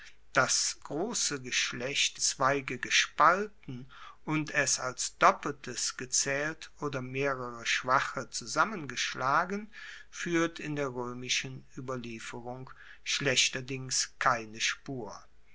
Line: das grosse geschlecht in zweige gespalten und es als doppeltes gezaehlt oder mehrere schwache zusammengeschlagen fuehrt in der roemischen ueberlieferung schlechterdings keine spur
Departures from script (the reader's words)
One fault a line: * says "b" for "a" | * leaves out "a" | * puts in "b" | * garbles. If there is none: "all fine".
* leaves out "in"